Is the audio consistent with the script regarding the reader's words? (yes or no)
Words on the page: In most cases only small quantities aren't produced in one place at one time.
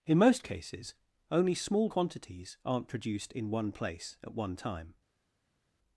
yes